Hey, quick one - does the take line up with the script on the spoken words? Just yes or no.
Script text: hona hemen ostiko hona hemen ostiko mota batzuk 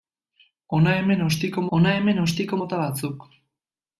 yes